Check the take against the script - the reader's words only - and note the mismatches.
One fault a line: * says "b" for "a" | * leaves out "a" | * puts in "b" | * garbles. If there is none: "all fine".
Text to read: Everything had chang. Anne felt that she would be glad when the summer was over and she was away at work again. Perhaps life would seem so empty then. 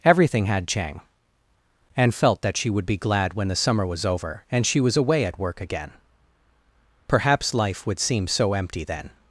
all fine